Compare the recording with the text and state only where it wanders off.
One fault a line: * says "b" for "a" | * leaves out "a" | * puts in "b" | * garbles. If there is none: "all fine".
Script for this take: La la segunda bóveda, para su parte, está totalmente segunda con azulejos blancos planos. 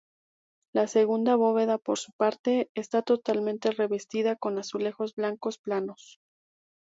* leaves out "la"
* says "por" for "para"
* says "revestida" for "segunda"